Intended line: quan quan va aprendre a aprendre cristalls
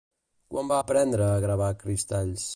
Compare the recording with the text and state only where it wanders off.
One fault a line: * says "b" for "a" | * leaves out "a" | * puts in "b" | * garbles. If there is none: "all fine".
* leaves out "quan"
* says "gravar" for "aprendre"